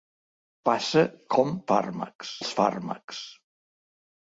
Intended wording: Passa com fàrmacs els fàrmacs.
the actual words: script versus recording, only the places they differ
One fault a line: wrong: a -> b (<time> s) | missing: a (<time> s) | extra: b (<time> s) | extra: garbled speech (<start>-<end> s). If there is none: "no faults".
no faults